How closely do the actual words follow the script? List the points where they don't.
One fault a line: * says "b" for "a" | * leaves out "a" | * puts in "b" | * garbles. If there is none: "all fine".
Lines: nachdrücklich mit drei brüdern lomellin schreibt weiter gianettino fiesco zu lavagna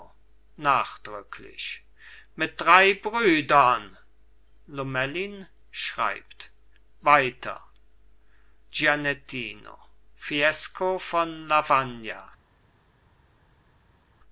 * says "von" for "zu"